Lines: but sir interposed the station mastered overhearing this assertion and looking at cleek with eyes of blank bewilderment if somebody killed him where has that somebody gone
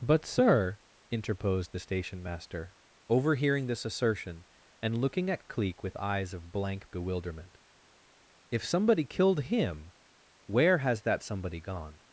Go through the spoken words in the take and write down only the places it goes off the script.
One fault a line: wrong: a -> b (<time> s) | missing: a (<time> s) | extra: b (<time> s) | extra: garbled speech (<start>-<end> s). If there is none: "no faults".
wrong: mastered -> master (2.2 s)